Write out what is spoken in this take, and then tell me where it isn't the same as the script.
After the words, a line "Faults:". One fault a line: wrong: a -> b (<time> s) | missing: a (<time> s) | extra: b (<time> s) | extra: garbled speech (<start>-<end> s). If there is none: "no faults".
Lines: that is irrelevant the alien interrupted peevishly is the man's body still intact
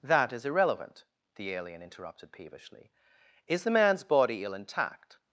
that is irrelevant the alien interrupted peevishly is the man's body ill intact
Faults:
wrong: still -> ill (4.4 s)